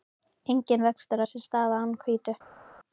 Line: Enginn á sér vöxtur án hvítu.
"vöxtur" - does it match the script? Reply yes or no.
no